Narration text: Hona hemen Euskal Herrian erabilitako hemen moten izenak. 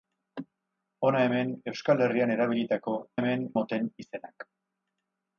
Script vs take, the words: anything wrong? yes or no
no